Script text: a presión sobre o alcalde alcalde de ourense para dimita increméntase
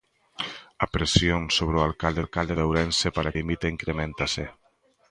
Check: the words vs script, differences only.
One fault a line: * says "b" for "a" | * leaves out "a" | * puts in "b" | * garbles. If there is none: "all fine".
all fine